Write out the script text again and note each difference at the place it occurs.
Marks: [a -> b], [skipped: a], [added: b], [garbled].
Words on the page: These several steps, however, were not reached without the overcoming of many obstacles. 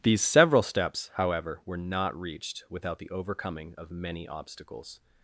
These several steps, however, were not reached without the overcoming of many obstacles.